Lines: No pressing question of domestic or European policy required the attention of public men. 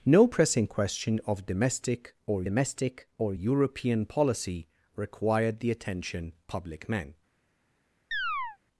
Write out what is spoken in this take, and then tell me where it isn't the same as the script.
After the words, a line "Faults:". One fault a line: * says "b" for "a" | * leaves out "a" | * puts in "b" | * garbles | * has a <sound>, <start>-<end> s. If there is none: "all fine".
No pressing question of domestic or domestic or European policy required the attention public men.
Faults:
* puts in "domestic or"
* leaves out "of"
* has a chirp, 8.1-8.6 s